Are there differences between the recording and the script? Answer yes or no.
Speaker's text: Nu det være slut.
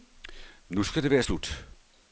yes